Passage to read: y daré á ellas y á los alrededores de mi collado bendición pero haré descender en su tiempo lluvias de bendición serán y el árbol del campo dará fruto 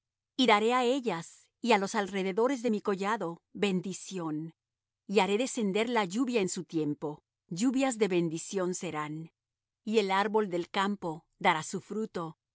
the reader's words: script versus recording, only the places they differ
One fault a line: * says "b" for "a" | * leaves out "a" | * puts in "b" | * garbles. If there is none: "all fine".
* says "y" for "pero"
* puts in "la lluvia"
* puts in "su"